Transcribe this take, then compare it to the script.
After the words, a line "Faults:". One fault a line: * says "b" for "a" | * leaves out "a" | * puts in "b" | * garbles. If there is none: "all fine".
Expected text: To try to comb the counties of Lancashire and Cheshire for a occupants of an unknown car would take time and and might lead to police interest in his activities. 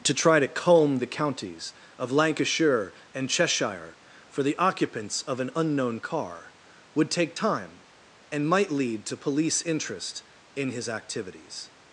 To try to comb the counties of Lancashire and Cheshire for the occupants of an unknown car would take time and might lead to police interest in his activities.
Faults:
* says "the" for "a"
* leaves out "and"